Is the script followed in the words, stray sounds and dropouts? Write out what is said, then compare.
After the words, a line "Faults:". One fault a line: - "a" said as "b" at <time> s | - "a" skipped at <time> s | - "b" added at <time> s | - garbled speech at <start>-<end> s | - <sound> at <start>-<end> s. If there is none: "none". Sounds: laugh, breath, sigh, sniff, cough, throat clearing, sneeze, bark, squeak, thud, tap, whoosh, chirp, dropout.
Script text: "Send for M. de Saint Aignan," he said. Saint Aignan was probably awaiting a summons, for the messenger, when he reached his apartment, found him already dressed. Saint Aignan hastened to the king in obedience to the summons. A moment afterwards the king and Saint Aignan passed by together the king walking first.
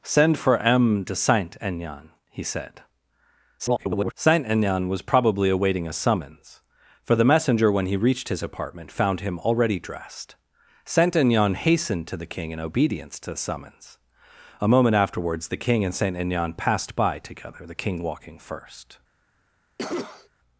"Send for M. de Saint Aignan," he said. [garbled] Saint Aignan was probably awaiting a summons, for the messenger, when he reached his apartment, found him already dressed. Saint Aignan hastened to the king in obedience to the summons. A moment afterwards the king and Saint Aignan passed by together the king walking first.
Faults:
- garbled speech at 3.6-4.1 s
- cough at 19.8-20.3 s